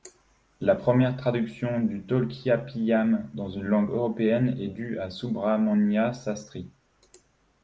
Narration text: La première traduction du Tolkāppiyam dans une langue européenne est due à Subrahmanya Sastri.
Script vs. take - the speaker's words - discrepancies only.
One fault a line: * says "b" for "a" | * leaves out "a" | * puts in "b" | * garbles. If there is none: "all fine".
all fine